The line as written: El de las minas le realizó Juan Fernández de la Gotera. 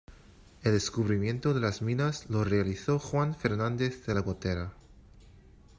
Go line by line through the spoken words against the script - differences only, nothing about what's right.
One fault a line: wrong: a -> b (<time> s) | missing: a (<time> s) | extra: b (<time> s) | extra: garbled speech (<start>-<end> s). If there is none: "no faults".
extra: descubrimiento (0.7 s)
wrong: le -> lo (2.3 s)